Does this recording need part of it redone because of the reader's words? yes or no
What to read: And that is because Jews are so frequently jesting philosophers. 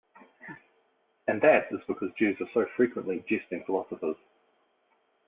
no